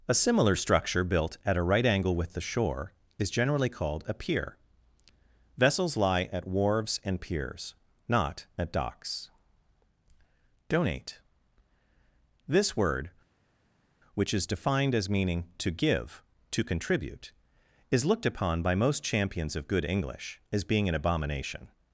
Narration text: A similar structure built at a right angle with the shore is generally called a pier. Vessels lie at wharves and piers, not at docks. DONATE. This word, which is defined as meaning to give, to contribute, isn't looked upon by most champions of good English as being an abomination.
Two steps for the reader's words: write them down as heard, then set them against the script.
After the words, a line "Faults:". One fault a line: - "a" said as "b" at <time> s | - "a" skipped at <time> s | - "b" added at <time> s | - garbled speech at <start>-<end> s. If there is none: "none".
A similar structure built at a right angle with the shore is generally called a pier. Vessels lie at wharves and piers, not at docks. DONATE. This word, which is defined as meaning to give, to contribute, is looked upon by most champions of good English as being an abomination.
Faults:
- "isn't" said as "is" at 17.9 s